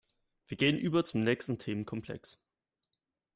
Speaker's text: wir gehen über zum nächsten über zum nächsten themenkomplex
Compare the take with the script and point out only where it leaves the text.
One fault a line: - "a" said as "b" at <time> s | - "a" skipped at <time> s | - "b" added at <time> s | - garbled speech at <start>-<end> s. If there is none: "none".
- "über zum nächsten" skipped at 1.6 s